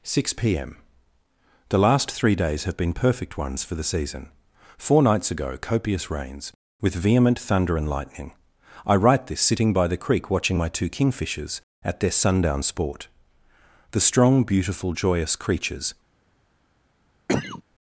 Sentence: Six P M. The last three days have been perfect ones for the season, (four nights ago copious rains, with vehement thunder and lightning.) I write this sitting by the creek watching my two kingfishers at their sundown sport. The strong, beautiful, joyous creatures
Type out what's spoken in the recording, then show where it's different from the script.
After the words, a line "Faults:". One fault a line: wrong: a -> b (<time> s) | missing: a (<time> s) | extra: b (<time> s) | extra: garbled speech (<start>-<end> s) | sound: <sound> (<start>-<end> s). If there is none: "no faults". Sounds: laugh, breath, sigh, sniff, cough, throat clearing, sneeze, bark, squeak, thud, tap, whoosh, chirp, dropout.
Six P M. The last three days have been perfect ones for the season, (four nights ago copious rains, with vehement thunder and lightning.) I write this sitting by the creek watching my two kingfishers at their sundown sport. The strong, beautiful, joyous creatures
Faults:
sound: cough (17.3-17.6 s)